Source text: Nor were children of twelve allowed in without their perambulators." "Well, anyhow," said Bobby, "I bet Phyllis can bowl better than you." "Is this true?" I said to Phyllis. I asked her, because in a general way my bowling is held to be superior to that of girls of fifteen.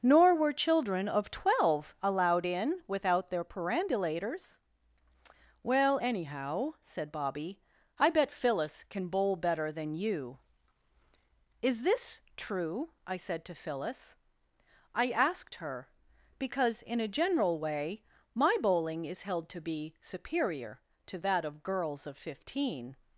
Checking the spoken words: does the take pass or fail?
pass